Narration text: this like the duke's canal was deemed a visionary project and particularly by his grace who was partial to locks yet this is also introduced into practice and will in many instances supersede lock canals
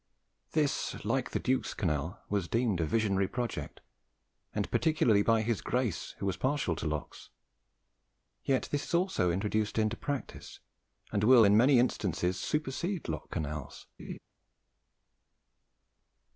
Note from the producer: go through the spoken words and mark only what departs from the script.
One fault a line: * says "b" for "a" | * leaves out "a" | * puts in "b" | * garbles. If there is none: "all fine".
all fine